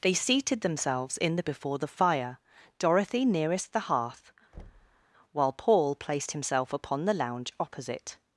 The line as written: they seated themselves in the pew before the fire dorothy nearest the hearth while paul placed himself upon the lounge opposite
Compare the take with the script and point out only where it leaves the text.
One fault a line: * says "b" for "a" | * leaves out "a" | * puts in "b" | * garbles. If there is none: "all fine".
* leaves out "pew"